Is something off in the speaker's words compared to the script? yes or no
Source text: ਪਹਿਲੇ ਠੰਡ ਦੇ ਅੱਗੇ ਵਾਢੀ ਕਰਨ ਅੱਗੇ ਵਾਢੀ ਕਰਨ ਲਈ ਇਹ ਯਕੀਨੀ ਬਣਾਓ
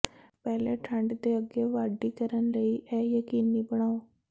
yes